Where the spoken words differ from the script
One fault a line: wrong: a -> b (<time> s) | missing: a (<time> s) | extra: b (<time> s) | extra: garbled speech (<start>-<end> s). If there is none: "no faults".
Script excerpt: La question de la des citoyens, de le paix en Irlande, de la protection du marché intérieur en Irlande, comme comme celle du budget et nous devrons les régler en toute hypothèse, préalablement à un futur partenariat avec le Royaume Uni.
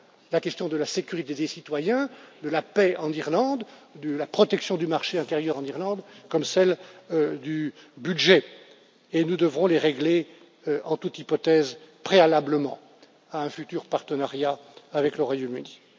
extra: sécurité (0.8 s)
wrong: le -> la (2.5 s)
missing: comme (6.4 s)